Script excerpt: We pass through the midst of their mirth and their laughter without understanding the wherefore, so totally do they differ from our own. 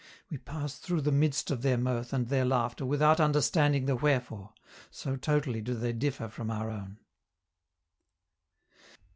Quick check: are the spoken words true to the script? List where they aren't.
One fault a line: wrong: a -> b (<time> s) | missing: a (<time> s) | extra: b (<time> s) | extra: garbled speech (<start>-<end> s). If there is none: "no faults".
no faults